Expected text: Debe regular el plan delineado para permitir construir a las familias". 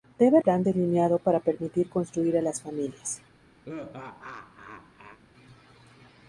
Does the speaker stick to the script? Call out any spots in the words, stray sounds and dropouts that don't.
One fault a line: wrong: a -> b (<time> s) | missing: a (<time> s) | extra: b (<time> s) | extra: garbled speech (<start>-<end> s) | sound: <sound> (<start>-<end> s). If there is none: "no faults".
missing: regular el (0.4 s)
sound: laugh (3.6-5.2 s)